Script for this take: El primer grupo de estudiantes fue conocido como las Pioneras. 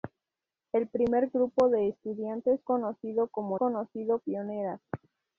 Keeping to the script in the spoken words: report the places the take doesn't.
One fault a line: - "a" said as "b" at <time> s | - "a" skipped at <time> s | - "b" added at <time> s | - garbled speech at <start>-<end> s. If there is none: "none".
- "fue" skipped at 2.6 s
- "las" said as "conocido" at 3.6 s